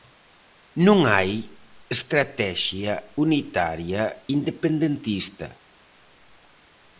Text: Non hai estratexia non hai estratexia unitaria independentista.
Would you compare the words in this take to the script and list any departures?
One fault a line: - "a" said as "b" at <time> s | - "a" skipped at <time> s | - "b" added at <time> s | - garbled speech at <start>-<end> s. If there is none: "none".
- "non hai estratexia" skipped at 2.9 s